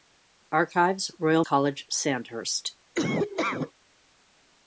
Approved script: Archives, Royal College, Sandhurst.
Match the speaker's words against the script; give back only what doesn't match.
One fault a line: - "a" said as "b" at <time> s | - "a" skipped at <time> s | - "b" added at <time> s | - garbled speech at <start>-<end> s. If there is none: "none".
none